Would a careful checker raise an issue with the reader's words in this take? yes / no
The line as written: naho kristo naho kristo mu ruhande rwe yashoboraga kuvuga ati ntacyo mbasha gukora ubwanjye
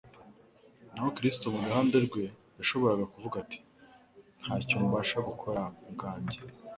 yes